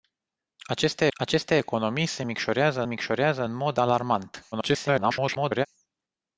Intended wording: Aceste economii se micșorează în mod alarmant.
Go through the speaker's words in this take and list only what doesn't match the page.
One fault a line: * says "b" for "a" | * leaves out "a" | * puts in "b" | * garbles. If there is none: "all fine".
* puts in "aceste"
* puts in "micșorează"
* garbles